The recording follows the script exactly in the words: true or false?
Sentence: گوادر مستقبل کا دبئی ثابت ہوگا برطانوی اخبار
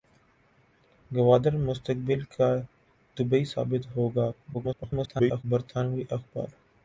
false